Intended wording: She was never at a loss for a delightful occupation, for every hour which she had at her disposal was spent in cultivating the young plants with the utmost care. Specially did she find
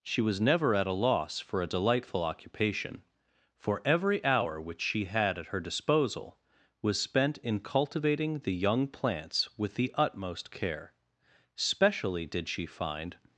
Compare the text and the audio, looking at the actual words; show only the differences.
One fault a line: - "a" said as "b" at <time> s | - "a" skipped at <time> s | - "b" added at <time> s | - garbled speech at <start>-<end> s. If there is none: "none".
none